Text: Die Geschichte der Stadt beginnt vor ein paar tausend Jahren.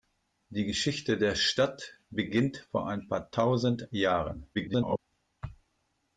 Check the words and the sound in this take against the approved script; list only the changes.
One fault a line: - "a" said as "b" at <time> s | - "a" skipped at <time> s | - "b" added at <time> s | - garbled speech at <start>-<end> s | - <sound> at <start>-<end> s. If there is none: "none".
- garbled speech at 4.5-5.0 s